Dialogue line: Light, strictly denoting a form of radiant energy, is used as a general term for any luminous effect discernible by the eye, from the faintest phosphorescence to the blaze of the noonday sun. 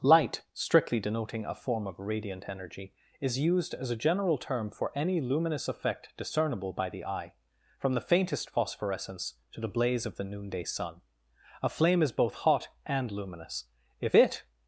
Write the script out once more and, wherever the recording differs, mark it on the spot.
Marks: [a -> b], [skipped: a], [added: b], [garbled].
Light, strictly denoting a form of radiant energy, is used as a general term for any luminous effect discernible by the eye, from the faintest phosphorescence to the blaze of the noonday sun. [added: A flame is both hot and luminous if it]